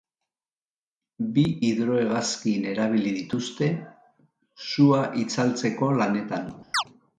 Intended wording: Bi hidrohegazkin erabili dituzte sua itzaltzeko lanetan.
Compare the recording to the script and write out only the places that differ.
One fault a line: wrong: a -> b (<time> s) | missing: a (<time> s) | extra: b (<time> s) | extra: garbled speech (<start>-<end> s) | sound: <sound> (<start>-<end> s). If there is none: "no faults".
sound: chirp (6.7-6.8 s)